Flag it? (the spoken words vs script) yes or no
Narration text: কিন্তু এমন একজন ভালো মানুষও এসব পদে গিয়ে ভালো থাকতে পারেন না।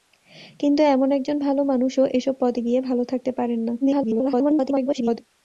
yes